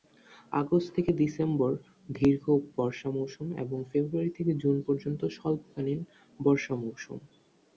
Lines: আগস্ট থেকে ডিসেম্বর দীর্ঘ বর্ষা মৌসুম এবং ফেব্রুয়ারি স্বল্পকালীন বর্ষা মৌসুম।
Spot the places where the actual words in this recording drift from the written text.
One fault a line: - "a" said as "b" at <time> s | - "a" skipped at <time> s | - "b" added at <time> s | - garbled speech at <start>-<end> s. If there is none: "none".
- "থেকে জুন পর্যন্ত" added at 4.4 s